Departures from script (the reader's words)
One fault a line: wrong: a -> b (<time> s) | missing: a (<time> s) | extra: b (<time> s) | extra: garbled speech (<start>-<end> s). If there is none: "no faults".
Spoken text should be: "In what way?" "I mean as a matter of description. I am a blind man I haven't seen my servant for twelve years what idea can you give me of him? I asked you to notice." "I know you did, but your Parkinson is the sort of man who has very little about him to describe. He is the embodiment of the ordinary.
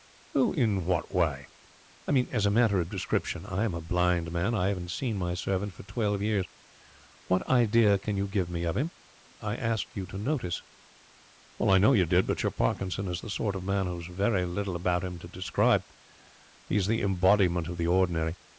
no faults